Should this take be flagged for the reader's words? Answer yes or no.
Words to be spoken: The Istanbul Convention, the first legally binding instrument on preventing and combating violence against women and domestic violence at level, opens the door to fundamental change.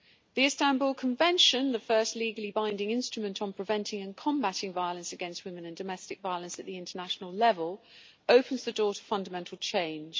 yes